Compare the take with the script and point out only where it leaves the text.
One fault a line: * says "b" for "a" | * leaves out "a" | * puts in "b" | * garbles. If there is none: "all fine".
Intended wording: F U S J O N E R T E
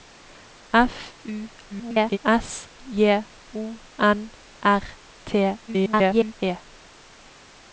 * garbles
* leaves out "E"
* garbles